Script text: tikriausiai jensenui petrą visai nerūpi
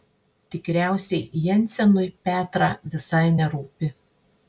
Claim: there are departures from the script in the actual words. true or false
false